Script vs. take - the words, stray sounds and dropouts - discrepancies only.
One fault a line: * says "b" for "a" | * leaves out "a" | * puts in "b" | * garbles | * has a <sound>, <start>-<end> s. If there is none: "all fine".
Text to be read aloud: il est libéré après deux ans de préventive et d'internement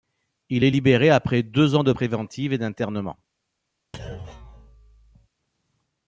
* has a thud, 3.9-5.3 s